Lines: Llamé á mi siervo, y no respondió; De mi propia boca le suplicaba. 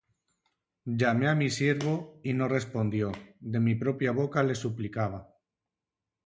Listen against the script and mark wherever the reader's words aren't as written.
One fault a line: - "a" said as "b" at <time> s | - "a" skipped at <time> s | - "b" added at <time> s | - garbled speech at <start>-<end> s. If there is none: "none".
none